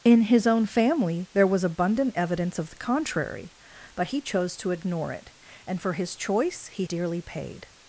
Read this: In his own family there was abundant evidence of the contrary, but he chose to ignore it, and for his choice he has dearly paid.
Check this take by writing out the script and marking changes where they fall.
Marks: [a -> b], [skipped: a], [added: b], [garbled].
In his own family there was abundant evidence of the contrary, but he chose to ignore it, and for his choice he [skipped: has] dearly paid.